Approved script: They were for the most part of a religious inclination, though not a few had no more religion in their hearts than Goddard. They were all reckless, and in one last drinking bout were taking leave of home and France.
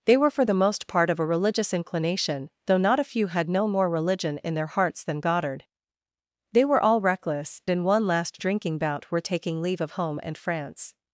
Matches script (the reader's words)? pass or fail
fail